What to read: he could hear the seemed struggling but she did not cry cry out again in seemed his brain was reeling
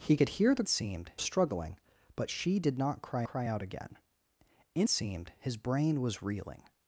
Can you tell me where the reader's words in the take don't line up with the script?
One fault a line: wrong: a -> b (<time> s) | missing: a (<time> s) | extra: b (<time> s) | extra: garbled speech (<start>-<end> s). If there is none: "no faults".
no faults